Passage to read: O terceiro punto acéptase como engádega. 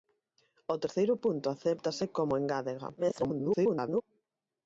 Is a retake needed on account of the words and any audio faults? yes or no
yes